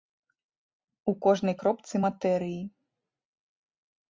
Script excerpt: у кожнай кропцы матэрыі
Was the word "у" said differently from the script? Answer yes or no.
no